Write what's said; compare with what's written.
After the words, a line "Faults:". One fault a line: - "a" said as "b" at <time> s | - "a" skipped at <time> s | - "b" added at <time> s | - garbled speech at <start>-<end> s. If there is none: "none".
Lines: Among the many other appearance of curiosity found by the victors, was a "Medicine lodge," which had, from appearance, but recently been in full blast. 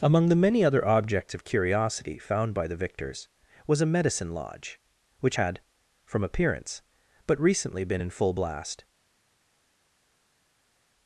Among the many other objects of curiosity found by the victors, was a "Medicine lodge," which had, from appearance, but recently been in full blast.
Faults:
- "appearance" said as "objects" at 0.9 s